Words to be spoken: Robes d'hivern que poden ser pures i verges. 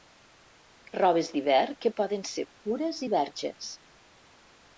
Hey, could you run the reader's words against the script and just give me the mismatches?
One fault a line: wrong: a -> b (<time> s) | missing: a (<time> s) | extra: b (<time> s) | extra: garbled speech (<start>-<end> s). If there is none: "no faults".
no faults